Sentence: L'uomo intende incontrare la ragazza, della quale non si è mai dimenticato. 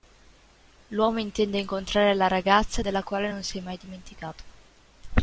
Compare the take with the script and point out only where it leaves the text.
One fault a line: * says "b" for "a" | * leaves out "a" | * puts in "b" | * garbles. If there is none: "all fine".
all fine